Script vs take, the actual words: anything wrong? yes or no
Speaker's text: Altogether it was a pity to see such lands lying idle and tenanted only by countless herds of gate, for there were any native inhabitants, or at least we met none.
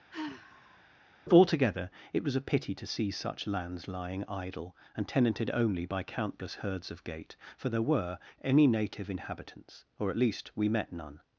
no